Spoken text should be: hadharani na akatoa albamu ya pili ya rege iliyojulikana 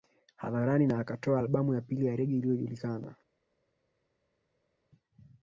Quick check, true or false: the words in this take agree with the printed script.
true